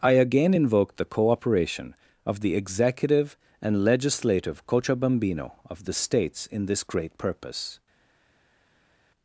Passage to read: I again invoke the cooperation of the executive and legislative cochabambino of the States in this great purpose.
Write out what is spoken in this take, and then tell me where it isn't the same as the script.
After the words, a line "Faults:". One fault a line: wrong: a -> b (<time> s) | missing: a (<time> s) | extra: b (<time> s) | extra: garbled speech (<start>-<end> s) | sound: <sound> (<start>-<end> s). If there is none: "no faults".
I again invoke the cooperation of the executive and legislative cochabambino of the States in this great purpose.
Faults:
no faults